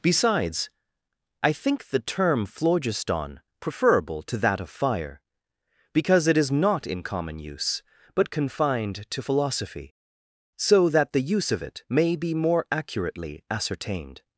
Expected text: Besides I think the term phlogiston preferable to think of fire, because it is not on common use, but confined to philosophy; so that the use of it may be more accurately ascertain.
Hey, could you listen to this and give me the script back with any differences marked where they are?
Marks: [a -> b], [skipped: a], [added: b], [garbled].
Besides I think the term phlogiston preferable to [think -> that] of fire, because it is not [on -> in] common use, but confined to philosophy; so that the use of it may be more accurately [ascertain. -> ascertained]